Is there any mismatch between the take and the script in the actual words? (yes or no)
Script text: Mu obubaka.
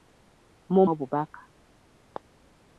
no